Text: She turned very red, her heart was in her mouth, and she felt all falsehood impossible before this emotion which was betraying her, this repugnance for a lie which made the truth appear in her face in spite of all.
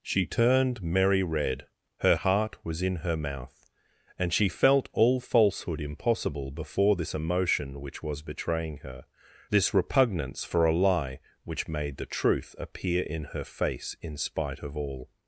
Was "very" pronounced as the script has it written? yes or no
no